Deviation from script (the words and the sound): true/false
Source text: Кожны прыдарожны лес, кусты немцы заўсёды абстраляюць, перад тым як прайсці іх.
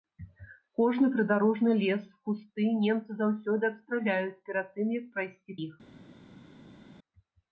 false